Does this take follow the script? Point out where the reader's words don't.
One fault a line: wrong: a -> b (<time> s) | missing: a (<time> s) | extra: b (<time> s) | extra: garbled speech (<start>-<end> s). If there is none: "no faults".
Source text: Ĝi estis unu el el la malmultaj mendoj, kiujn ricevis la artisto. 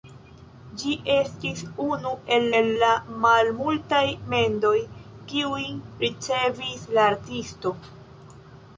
no faults